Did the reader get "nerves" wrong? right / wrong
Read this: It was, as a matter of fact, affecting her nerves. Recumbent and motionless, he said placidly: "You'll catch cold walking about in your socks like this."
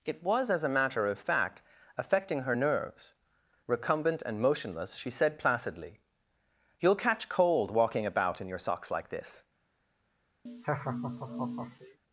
right